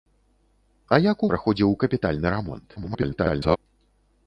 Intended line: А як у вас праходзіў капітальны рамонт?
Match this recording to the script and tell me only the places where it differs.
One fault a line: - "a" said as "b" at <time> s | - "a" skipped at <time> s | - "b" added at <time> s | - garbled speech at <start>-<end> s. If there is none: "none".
- "вас" skipped at 1.3 s
- garbled speech at 2.8-3.6 s